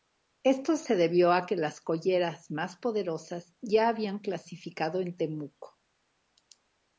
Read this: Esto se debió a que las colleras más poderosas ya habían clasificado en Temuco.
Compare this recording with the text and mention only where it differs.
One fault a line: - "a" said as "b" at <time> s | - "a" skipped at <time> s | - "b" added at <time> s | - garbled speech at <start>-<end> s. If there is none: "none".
none